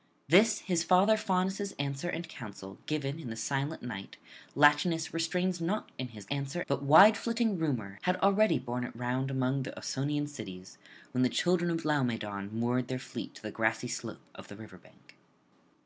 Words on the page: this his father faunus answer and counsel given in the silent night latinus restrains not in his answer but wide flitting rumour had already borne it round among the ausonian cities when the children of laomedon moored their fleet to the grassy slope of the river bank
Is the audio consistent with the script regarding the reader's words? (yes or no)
yes